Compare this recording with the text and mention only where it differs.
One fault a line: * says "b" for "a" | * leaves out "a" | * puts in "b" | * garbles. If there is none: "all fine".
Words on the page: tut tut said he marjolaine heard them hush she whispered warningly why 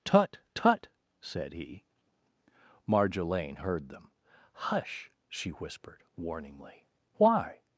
all fine